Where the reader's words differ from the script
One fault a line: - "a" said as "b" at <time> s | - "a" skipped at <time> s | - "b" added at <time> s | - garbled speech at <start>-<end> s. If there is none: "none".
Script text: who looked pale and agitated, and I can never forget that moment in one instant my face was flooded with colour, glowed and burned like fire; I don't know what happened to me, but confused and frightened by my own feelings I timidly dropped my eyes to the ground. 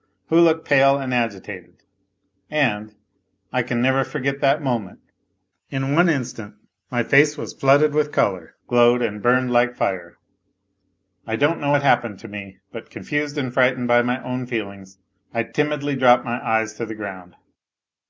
none